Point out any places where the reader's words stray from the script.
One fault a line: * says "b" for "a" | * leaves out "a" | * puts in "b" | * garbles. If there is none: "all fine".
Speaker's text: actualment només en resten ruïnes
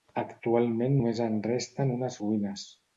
* puts in "unes"